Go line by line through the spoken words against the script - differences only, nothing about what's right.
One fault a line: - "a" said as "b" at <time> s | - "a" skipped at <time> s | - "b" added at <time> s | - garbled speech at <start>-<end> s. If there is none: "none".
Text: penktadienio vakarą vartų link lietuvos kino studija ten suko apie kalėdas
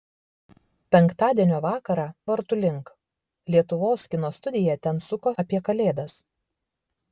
none